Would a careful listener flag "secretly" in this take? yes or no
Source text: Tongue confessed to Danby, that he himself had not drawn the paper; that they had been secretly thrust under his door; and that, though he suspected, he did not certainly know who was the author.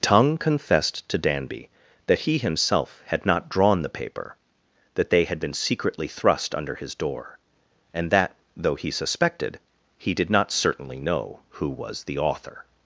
no